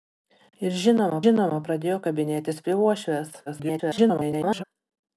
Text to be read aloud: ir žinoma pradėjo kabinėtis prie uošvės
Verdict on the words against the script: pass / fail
fail